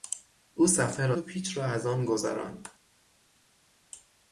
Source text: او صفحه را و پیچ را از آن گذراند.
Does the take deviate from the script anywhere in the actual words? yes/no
no